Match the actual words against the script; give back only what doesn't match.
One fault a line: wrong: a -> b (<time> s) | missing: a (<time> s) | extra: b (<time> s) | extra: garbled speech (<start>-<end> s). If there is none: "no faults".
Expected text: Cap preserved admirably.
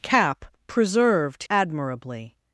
no faults